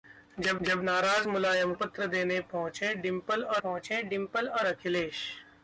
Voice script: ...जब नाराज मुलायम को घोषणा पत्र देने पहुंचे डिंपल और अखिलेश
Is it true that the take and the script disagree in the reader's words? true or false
true